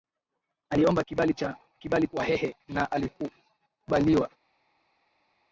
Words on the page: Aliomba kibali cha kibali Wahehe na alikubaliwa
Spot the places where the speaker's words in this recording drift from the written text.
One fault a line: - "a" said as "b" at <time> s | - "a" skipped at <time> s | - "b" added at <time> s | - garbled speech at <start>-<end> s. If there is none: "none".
none